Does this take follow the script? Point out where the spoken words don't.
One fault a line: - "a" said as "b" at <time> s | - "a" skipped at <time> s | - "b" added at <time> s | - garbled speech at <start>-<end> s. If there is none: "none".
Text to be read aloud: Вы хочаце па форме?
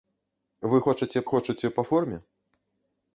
- "хочаце" added at 1.3 s